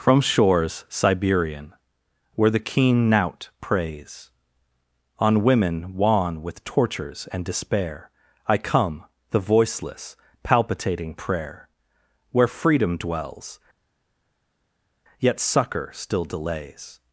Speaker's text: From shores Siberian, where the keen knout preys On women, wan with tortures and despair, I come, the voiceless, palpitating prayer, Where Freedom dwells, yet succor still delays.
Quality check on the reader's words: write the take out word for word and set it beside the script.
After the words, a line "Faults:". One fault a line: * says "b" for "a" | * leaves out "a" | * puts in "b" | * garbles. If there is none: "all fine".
From shores Siberian, where the keen knout preys On women, wan with tortures and despair, I come, the voiceless, palpitating prayer, Where Freedom dwells, yet succor still delays.
Faults:
all fine